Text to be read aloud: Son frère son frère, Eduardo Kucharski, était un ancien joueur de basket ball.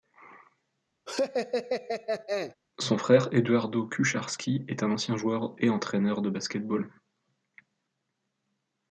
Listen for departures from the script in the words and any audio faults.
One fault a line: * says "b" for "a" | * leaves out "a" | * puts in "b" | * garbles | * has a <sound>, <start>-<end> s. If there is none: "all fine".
* has a laugh, 1.1-2.5 s
* leaves out "son frère"
* says "est" for "était"
* puts in "et entraîneur"